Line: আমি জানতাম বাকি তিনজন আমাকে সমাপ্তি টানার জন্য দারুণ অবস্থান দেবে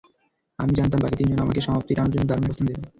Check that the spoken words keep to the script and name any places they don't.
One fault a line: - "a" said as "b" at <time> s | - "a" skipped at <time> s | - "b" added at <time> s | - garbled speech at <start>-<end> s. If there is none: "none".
none